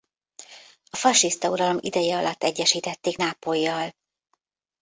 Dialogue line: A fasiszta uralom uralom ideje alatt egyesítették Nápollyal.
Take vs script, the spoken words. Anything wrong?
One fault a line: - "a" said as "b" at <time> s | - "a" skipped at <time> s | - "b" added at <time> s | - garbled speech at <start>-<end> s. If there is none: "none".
- "uralom" skipped at 1.8 s